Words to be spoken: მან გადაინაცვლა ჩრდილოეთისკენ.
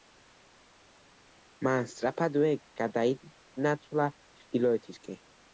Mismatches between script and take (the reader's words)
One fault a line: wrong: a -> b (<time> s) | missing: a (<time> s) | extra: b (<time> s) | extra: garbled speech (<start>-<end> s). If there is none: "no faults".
extra: სწრაფადვე (1.9 s)